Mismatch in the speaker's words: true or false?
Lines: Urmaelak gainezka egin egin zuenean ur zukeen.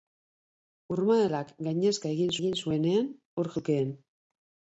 false